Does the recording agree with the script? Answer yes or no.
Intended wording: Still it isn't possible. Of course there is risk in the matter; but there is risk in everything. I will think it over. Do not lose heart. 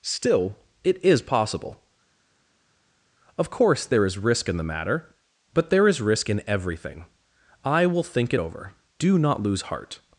no